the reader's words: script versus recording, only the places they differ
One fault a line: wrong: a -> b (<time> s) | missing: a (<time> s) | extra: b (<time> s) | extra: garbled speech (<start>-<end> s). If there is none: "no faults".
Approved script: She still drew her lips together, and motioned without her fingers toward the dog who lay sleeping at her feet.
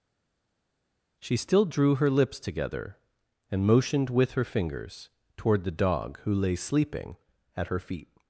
wrong: without -> with (4.1 s)